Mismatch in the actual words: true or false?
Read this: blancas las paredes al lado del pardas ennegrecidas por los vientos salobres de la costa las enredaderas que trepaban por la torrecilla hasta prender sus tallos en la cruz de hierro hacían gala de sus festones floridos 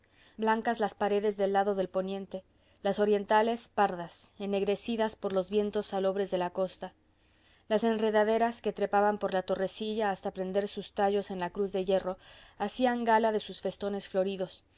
true